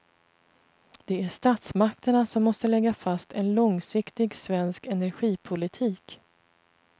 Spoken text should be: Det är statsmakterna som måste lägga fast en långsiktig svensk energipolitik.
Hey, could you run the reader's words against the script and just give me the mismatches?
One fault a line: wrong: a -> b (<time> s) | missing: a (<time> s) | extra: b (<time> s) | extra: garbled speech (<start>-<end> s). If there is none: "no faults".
no faults